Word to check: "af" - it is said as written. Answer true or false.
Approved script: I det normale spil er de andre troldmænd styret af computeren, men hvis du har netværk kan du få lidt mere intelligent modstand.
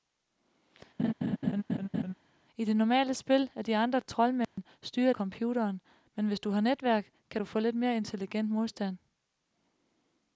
false